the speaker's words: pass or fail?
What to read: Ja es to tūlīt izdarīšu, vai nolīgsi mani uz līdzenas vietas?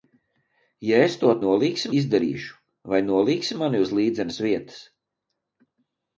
fail